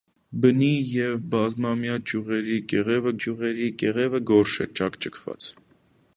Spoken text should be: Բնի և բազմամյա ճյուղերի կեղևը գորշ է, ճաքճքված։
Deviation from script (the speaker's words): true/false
true